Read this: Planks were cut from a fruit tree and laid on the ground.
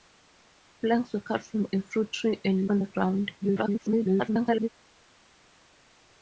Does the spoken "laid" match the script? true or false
false